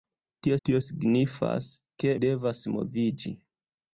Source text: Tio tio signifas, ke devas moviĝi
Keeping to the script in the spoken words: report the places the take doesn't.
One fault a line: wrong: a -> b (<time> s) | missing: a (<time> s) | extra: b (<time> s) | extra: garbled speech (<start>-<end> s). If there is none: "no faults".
no faults